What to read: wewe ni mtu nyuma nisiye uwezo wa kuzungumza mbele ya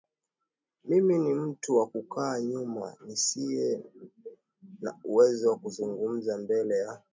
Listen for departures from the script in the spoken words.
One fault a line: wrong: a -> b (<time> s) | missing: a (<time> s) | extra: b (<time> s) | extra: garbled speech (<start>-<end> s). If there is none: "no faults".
wrong: wewe -> mimi (0.8 s)
extra: wa kukaa (1.8 s)
extra: na (4.8 s)